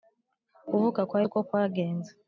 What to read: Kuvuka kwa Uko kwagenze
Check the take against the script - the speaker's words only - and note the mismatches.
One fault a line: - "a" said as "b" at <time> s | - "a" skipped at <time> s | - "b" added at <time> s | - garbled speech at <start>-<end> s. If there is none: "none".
none